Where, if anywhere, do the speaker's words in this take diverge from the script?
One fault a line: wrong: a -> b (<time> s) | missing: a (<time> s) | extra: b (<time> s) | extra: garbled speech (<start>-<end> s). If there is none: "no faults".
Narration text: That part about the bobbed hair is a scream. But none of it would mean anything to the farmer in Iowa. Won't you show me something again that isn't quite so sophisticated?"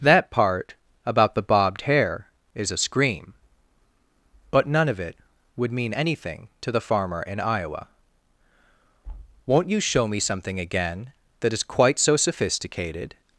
wrong: isn't -> is (11.5 s)